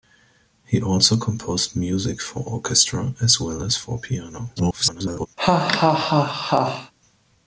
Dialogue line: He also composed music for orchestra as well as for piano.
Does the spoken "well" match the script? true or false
true